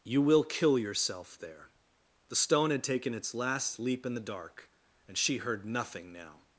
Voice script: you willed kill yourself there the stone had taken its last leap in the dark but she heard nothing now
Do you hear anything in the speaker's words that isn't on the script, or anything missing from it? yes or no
yes